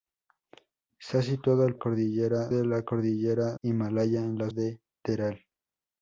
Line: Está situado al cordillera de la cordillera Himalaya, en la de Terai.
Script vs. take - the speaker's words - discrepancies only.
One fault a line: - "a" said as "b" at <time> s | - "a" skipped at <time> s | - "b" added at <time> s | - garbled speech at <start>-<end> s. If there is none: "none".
none